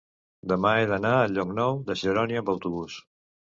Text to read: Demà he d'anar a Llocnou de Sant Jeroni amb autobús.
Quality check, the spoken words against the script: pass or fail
fail